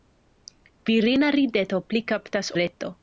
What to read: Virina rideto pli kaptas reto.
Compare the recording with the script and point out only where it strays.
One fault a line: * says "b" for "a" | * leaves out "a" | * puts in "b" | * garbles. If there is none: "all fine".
all fine